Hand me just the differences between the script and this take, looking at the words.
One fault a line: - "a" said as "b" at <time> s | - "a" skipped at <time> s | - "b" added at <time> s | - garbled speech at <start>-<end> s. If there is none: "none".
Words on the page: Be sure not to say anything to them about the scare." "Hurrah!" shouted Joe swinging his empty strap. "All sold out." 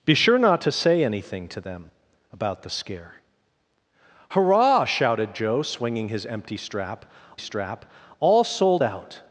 - "strap" added at 7.4 s